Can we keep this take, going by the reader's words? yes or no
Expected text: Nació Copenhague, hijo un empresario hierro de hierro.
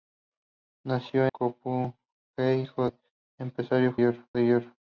yes